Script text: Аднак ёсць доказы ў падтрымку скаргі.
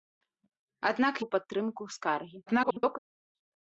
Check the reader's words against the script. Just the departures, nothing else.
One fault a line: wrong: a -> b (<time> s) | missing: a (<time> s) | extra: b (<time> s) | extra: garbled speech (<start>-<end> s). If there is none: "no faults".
missing: ёсць доказы (1.1 s)
extra: garbled speech (2.5-3.0 s)